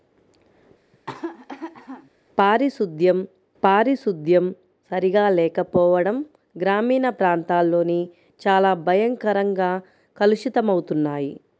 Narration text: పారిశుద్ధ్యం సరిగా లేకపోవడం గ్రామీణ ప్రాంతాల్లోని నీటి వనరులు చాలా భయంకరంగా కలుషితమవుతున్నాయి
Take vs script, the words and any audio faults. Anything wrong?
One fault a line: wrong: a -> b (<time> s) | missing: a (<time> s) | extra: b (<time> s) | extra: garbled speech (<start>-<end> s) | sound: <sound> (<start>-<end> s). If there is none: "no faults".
sound: cough (0.9-2.1 s)
extra: పారిశుద్ధ్యం (3.6 s)
missing: నీటి వనరులు (8.0 s)